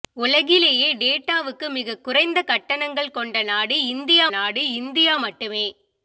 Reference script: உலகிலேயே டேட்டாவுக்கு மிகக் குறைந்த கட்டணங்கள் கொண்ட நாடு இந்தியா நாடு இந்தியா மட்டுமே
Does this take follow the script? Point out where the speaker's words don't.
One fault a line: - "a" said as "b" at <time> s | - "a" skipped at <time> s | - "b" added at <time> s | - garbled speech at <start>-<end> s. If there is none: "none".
none